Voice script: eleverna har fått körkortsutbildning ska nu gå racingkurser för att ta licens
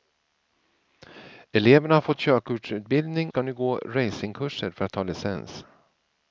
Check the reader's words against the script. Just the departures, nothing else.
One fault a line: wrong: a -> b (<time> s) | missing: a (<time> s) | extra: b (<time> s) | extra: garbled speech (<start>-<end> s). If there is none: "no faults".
no faults